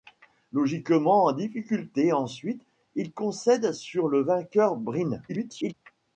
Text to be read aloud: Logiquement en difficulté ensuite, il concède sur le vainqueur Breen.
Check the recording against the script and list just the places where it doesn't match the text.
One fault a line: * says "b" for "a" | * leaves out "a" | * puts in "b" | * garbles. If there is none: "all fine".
* garbles